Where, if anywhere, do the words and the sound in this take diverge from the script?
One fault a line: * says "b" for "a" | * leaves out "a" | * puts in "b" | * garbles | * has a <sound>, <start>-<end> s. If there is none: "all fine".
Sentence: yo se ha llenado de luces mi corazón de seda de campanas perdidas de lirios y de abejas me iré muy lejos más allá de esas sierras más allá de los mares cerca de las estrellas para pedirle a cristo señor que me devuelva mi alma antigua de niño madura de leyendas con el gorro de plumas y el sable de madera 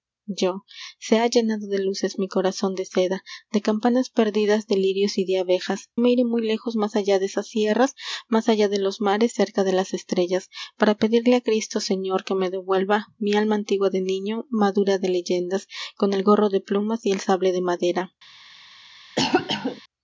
* has a cough, 19.2-19.8 s